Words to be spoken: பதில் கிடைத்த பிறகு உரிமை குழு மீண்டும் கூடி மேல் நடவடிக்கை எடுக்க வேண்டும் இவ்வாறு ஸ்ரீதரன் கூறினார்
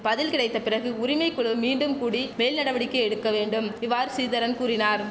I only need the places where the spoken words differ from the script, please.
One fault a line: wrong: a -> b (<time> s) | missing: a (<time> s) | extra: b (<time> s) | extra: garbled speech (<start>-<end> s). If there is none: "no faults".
no faults